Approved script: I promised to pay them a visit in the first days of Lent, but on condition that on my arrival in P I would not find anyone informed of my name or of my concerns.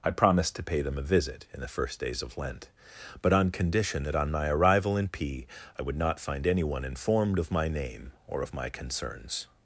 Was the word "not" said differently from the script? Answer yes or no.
no